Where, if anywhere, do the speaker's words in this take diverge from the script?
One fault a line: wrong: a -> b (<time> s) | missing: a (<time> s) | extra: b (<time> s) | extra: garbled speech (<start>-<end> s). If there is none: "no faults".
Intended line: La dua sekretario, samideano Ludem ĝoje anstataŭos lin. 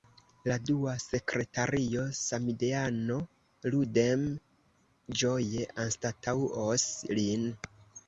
no faults